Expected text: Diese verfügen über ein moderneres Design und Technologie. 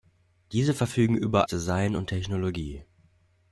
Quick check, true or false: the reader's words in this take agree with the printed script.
false